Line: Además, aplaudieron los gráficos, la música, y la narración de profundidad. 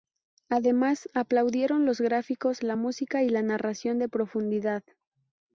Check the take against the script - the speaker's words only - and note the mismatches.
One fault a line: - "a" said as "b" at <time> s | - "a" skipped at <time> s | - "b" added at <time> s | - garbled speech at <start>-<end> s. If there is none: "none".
none